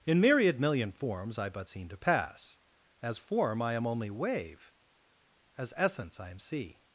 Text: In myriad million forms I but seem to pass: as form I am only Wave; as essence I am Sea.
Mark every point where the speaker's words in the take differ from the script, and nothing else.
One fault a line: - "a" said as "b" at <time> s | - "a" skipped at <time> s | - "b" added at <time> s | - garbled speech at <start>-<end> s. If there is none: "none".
none